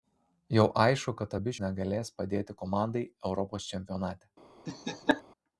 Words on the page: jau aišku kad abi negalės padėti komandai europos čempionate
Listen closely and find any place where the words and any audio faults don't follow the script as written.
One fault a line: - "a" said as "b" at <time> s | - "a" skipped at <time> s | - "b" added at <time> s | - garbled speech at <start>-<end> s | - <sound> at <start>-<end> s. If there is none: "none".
- laugh at 4.7-5.2 s